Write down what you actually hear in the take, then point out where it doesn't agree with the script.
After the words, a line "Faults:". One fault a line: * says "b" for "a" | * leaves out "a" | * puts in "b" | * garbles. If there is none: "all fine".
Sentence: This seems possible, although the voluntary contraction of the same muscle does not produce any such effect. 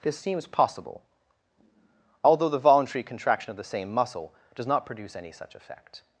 This seems possible, although the voluntary contraction of the same muscle does not produce any such effect.
Faults:
all fine